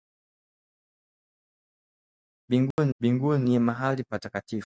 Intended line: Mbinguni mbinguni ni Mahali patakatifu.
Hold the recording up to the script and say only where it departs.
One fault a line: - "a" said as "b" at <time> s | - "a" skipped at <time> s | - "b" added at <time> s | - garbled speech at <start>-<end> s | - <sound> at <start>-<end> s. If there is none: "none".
- dropout at 2.7-2.8 s